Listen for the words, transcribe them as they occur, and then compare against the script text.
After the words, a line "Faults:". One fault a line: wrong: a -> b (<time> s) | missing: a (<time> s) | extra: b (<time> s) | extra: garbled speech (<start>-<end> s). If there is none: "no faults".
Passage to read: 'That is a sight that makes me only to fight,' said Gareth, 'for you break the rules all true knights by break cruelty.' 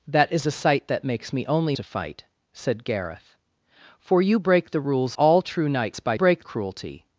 'That is a sight that makes me only to fight,' said Gareth, 'for you break the rules all true knights by break cruelty.'
Faults:
no faults